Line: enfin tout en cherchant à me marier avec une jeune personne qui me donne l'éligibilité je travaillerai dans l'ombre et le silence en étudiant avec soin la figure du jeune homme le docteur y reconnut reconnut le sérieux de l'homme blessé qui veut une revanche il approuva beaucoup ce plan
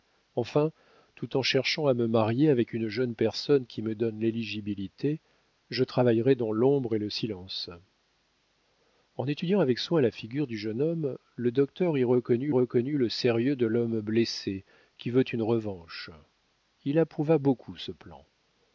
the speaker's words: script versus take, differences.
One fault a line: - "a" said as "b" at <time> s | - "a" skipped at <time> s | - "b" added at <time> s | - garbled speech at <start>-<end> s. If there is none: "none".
none